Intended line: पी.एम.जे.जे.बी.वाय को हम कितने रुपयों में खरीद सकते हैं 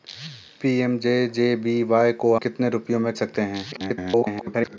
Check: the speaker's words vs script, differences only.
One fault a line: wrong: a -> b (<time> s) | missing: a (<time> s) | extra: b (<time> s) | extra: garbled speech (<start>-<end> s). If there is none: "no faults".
missing: हम (2.4 s)
missing: खरीद (3.1 s)
extra: garbled speech (3.7-4.8 s)